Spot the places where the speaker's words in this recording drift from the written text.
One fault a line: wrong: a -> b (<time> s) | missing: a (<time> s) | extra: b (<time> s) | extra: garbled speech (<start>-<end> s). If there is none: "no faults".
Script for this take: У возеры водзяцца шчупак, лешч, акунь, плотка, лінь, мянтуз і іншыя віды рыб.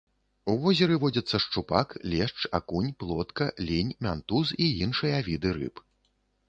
no faults